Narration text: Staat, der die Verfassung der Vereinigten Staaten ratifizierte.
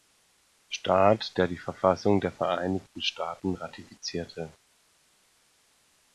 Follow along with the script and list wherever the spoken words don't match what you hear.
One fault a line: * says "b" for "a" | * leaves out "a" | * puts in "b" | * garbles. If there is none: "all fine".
all fine